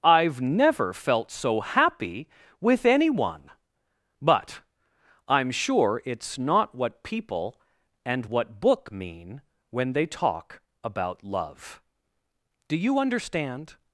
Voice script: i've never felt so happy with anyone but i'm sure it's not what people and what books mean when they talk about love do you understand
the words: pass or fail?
fail